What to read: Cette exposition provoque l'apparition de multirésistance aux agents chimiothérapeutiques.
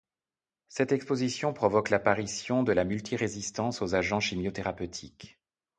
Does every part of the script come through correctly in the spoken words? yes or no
no